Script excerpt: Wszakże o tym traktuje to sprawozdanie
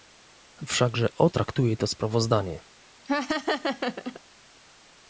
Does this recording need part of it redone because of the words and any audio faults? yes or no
yes